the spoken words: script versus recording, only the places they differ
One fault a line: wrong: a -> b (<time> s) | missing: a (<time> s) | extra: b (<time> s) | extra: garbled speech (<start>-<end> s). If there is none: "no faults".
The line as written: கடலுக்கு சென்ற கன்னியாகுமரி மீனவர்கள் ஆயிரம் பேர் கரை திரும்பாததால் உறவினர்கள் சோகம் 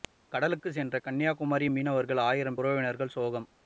missing: பேர் கரை திரும்பாததால் (2.6 s)